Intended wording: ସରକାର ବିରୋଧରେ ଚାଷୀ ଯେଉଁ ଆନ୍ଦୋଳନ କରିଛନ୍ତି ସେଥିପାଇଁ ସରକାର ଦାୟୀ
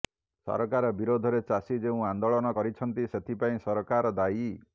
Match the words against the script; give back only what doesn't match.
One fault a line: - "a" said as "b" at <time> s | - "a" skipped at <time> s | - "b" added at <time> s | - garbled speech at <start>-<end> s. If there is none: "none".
none